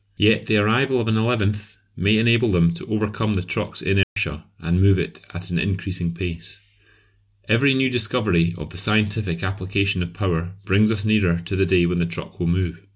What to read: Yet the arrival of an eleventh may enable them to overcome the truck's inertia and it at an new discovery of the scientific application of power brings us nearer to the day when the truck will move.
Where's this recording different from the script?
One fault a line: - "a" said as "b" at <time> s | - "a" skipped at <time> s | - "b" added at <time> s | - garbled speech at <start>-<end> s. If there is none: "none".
- "move" added at 4.8 s
- "increasing pace Every" added at 5.6 s